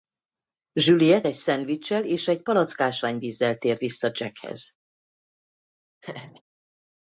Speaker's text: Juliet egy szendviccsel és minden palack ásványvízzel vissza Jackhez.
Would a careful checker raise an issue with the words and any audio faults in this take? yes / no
yes